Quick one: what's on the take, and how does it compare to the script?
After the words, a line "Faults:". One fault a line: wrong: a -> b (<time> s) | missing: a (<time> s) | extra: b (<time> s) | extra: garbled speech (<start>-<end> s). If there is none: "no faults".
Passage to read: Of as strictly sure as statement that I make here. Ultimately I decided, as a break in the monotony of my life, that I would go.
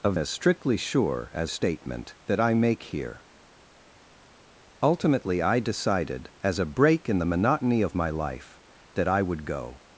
Of as strictly sure as statement that I make here. Ultimately I decided, as a break in the monotony of my life, that I would go.
Faults:
no faults